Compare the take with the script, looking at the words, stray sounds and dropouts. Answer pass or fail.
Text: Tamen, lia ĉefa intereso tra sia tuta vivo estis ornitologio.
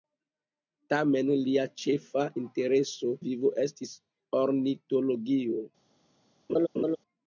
fail